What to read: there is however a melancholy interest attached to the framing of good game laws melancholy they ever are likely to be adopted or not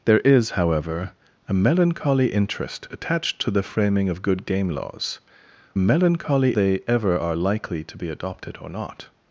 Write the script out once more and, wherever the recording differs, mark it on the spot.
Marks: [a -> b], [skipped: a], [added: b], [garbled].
there is however a melancholy interest attached to the framing of good game laws melancholy they ever are likely to be adopted or not